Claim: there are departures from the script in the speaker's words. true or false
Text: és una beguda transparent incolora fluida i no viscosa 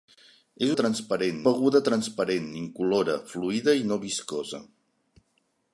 true